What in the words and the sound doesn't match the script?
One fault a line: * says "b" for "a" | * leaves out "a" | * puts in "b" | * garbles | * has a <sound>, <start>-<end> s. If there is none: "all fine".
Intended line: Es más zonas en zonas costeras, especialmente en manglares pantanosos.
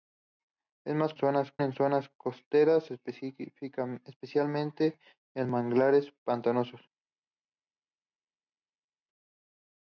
all fine